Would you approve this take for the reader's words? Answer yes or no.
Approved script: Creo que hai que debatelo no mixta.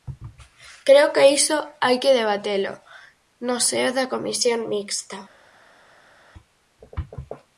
no